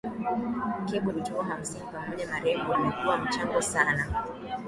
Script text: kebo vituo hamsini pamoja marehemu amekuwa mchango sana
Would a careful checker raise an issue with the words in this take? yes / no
no